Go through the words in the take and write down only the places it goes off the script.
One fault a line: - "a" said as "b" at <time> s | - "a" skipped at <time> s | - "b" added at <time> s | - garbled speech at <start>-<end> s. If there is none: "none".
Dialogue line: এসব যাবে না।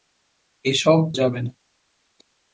none